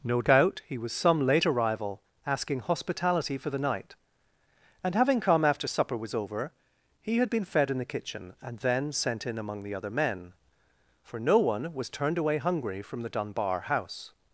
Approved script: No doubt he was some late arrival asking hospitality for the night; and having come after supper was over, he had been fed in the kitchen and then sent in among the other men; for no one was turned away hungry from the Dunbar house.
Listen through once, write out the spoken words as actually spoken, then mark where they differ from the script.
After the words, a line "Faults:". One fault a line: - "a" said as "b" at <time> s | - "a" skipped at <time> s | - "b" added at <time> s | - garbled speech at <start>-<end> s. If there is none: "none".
No doubt he was some late arrival asking hospitality for the night; and having come after supper was over, he had been fed in the kitchen and then sent in among the other men; for no one was turned away hungry from the Dunbar house.
Faults:
none